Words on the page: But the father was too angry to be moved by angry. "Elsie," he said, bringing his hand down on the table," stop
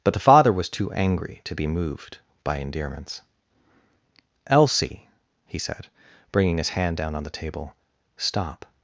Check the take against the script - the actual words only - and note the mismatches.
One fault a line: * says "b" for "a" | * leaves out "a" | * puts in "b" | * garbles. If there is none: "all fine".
* says "endearments" for "angry"